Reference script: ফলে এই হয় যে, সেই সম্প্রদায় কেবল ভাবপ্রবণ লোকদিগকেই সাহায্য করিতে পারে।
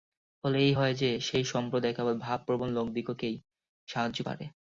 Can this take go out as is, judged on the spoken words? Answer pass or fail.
fail